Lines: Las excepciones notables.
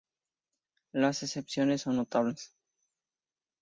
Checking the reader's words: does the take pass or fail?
fail